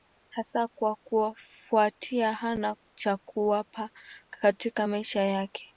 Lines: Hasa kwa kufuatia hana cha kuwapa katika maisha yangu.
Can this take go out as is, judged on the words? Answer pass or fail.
fail